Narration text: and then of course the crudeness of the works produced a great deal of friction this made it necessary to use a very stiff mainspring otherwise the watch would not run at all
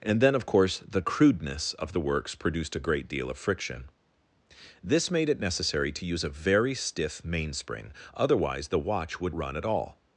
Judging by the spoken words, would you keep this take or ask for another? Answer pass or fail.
fail